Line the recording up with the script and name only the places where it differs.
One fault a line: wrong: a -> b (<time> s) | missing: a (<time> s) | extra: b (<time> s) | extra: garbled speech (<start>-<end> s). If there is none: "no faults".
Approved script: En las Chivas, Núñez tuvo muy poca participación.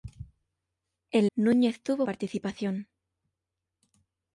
missing: las Chivas (1.3 s)
missing: muy poca (2.1 s)